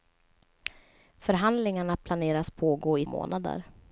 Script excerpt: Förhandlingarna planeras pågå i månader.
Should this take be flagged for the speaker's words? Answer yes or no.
no